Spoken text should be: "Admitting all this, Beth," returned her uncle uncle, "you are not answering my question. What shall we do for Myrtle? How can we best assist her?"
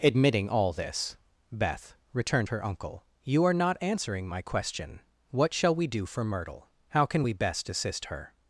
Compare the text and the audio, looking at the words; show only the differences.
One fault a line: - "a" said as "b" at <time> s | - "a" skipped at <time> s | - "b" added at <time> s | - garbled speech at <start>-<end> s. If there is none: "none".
- "uncle" skipped at 3.0 s